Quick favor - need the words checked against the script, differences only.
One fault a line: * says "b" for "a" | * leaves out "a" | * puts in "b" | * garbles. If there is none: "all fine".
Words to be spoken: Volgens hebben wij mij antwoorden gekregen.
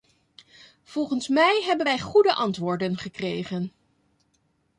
* puts in "mij"
* says "goede" for "mij"